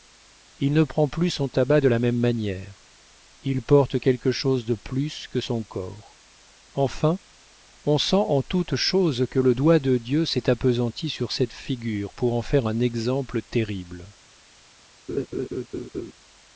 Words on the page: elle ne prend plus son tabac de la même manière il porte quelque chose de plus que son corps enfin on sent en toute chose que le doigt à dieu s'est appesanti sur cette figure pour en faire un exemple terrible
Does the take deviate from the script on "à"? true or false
true